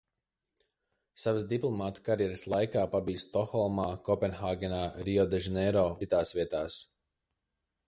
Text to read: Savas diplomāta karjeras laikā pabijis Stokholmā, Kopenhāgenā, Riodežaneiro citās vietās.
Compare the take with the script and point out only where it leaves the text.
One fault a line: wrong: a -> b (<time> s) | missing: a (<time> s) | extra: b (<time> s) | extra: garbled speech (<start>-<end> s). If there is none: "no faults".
no faults